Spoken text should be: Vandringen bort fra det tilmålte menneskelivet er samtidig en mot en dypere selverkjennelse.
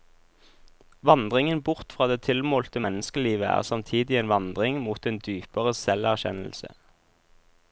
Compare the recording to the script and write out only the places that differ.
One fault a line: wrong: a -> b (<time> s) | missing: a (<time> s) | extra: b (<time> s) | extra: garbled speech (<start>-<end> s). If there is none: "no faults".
extra: vandring (4.3 s)